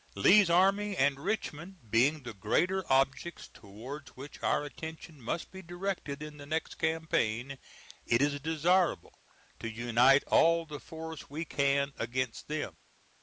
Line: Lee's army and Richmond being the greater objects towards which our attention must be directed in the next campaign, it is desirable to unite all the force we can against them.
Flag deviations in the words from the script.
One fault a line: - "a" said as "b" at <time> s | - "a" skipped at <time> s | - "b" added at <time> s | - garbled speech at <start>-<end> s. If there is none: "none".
none